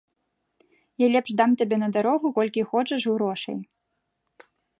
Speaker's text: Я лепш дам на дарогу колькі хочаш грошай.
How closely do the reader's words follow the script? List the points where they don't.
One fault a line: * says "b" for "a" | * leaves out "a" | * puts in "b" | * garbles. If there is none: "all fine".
* puts in "табе"